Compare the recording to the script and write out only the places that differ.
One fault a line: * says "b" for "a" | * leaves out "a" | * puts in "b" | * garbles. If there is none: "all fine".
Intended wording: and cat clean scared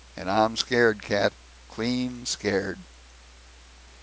* puts in "i'm scared"